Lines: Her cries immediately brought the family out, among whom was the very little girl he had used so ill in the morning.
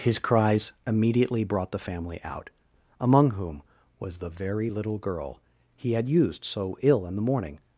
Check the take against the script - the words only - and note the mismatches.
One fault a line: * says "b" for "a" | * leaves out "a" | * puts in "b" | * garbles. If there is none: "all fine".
* says "His" for "Her"